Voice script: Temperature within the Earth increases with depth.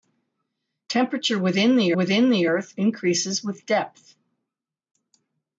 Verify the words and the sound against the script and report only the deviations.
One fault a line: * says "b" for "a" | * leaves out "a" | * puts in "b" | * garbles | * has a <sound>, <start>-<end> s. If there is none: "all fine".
* puts in "within the"